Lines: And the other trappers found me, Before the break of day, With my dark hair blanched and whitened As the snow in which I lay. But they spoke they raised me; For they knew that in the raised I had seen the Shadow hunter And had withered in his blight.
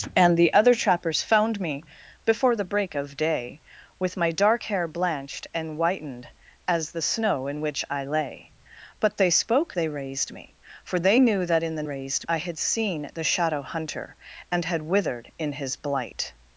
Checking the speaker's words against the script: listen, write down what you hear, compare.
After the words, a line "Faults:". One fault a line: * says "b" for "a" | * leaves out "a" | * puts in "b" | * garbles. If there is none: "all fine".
And the other trappers found me, Before the break of day, With my dark hair blanched and whitened As the snow in which I lay. But they spoke they raised me; For they knew that in the raised I had seen the Shadow hunter And had withered in his blight.
Faults:
all fine